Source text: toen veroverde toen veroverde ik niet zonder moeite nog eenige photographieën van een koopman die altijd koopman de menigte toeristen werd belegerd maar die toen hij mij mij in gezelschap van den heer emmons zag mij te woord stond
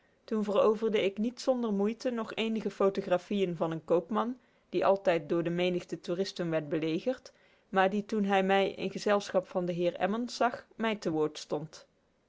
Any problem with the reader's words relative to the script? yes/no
yes